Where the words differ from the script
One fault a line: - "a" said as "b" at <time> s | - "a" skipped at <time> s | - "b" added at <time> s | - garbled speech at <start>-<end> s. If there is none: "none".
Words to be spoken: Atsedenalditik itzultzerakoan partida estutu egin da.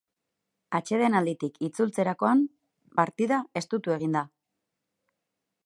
none